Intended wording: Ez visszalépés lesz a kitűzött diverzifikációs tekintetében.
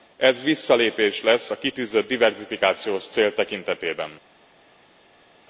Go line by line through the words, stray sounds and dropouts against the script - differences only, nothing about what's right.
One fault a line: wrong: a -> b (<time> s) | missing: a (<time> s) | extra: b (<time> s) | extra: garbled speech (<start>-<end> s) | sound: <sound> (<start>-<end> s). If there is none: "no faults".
extra: cél (3.1 s)